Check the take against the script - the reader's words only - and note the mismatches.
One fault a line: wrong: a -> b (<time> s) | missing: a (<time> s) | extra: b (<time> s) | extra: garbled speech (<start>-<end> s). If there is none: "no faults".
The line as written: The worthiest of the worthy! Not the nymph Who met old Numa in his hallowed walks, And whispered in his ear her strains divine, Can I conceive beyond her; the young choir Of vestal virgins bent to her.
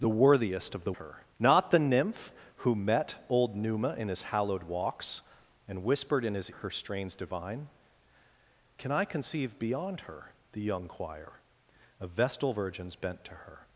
wrong: worthy -> her (0.9 s)
missing: ear (6.5 s)